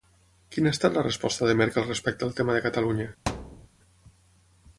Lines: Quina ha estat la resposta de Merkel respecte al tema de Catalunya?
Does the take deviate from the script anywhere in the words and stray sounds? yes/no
yes